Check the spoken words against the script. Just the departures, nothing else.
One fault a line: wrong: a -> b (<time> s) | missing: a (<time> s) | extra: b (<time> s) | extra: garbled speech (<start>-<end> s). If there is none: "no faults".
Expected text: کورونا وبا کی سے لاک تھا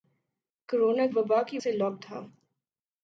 no faults